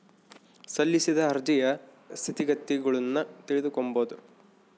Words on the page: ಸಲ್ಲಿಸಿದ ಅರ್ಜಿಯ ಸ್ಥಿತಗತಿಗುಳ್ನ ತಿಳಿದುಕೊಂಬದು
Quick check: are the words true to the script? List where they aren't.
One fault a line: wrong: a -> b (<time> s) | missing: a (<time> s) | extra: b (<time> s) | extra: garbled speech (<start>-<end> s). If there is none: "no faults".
no faults